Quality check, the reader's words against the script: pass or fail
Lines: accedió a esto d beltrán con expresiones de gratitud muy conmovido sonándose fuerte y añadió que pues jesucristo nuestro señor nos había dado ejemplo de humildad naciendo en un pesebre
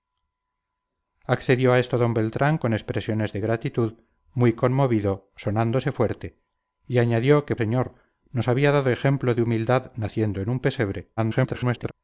fail